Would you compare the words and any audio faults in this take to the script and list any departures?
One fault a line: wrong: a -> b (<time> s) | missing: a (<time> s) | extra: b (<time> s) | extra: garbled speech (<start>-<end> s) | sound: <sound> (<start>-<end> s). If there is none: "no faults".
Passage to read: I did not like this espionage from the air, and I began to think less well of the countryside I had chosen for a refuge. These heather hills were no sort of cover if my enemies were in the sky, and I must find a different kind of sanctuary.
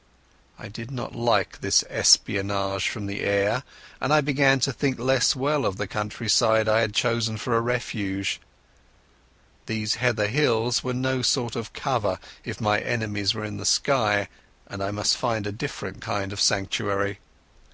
no faults